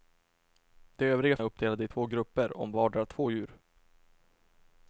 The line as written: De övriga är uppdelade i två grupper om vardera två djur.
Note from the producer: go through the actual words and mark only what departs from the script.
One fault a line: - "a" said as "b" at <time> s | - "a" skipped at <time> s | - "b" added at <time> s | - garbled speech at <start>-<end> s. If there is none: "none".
none